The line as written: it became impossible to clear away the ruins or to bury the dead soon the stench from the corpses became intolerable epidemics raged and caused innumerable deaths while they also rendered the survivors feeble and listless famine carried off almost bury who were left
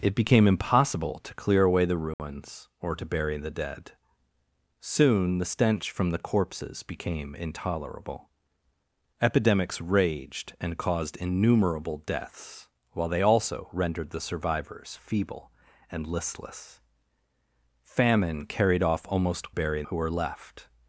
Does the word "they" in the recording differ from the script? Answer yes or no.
no